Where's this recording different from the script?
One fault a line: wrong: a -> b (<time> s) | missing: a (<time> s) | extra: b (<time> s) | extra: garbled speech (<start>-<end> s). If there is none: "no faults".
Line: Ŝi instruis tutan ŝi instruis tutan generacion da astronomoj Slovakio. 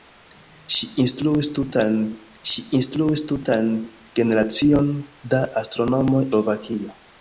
no faults